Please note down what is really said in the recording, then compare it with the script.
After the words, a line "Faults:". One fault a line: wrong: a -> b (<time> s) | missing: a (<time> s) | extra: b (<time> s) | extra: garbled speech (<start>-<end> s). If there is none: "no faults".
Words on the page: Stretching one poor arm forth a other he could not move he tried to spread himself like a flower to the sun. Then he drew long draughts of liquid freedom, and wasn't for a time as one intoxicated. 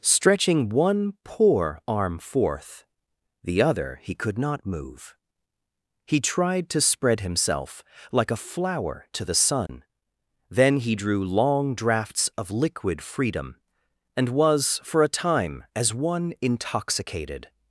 Stretching one poor arm forth the other he could not move he tried to spread himself like a flower to the sun. Then he drew long draughts of liquid freedom, and was for a time as one intoxicated.
Faults:
wrong: a -> the (3.4 s)
wrong: wasn't -> was (14.3 s)